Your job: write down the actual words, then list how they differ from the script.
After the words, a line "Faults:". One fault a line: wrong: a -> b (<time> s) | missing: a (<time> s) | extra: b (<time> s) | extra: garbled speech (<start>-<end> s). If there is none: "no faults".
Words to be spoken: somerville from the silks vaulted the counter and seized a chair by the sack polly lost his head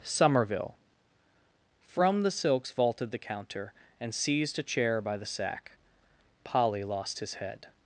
somerville from the silks vaulted the counter and seized a chair by the sack polly lost his head
Faults:
no faults